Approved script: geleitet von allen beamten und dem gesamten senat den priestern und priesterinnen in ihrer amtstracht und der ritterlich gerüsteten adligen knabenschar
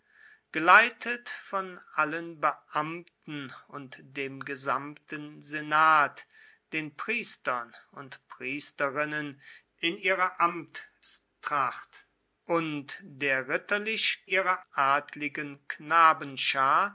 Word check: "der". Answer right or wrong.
right